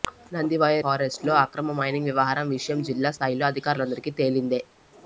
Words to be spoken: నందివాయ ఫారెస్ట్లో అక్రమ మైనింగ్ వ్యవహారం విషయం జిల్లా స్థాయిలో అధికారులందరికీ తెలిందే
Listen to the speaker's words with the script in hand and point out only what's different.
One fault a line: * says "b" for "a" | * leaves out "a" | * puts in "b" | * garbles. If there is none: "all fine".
all fine